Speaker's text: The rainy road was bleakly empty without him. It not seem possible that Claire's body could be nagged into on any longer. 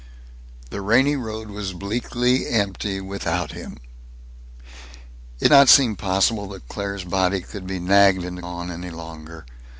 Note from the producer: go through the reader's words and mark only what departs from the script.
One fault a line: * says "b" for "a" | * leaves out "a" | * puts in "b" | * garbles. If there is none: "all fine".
all fine